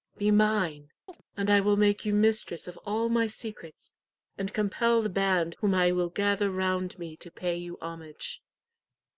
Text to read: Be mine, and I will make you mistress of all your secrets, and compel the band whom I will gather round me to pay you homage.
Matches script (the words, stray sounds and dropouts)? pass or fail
fail